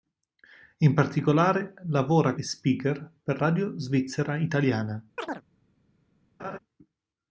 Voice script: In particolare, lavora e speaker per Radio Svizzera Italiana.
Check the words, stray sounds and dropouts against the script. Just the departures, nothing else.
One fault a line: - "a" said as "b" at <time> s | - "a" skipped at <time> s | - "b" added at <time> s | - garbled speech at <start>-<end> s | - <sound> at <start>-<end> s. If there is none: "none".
- chirp at 5.2-5.4 s
- laugh at 6.4-6.6 s